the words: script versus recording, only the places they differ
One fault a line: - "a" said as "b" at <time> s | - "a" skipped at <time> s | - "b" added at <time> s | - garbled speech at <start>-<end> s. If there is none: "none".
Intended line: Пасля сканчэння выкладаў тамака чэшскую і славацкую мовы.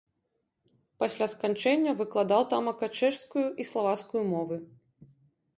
none